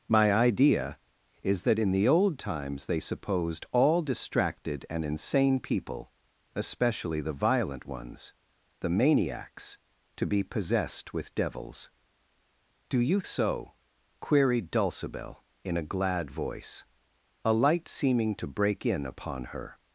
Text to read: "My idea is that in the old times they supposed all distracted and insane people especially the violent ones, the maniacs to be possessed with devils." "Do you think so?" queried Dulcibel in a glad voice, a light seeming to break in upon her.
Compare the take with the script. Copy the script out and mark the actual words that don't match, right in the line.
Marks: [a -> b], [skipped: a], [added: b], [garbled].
"My idea is that in the old times they supposed all distracted and insane people especially the violent ones, the maniacs to be possessed with devils." "Do you [skipped: think] so?" queried Dulcibel in a glad voice, a light seeming to break in upon her.